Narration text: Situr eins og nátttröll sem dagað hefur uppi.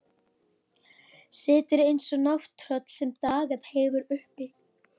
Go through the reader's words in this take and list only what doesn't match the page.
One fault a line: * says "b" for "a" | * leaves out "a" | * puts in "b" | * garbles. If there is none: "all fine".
all fine